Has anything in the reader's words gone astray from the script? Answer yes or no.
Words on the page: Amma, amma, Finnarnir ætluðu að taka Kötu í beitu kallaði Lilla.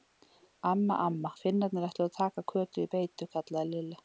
no